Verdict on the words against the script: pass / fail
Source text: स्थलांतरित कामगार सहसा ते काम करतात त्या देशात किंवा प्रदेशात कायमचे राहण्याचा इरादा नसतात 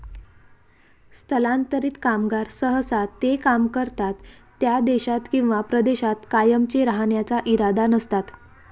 pass